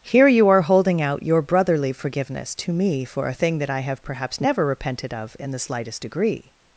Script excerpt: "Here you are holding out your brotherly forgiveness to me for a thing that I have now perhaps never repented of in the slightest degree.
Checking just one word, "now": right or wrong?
wrong